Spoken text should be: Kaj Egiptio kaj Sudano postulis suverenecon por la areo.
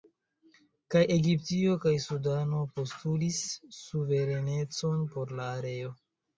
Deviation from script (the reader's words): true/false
false